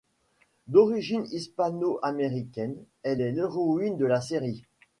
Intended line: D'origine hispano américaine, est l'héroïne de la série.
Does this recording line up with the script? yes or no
no